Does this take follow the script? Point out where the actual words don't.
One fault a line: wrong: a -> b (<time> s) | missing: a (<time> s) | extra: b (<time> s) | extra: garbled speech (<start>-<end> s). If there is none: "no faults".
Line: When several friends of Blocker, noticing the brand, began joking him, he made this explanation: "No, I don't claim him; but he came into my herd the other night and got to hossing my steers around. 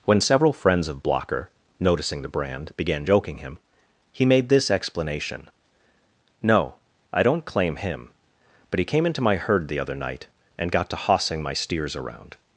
no faults